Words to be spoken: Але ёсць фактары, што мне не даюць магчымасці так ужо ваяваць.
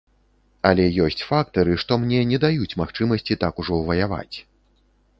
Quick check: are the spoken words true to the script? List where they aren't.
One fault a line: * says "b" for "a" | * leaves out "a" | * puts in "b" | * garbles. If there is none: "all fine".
all fine